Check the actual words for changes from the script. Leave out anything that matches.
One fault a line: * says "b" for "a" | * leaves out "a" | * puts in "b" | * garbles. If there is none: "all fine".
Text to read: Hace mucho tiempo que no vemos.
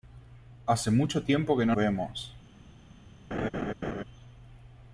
all fine